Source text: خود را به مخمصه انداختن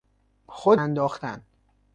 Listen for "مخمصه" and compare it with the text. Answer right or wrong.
wrong